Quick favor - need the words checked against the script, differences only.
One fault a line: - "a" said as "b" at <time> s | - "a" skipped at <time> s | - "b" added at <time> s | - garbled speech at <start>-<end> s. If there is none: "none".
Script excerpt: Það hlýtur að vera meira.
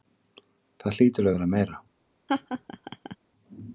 none